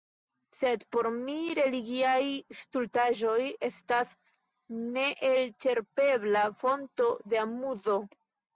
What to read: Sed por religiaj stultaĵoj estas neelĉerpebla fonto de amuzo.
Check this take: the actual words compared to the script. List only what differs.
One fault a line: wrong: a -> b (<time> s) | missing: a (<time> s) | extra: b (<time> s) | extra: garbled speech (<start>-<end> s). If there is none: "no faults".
extra: mi (1.2 s)